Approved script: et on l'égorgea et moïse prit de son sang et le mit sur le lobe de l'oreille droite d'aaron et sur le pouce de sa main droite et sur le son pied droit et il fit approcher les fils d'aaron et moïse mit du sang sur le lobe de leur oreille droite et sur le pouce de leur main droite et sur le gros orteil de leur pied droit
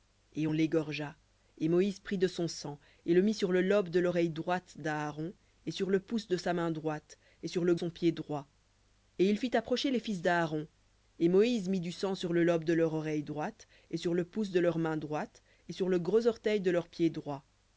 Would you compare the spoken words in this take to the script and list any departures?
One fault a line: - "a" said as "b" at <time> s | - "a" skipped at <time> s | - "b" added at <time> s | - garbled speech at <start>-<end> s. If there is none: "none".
none